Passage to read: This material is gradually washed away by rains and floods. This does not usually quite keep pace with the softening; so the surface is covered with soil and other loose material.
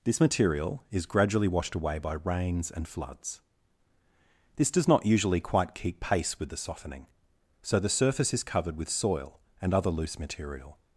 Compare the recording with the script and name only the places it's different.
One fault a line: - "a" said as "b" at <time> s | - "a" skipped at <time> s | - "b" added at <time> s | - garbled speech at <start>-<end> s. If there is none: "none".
none